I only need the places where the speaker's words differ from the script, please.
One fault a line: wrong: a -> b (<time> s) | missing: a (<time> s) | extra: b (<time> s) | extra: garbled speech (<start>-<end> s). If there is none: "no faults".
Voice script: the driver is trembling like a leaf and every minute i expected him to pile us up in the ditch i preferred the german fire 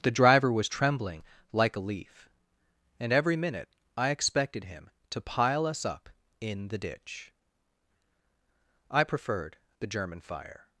wrong: is -> was (0.5 s)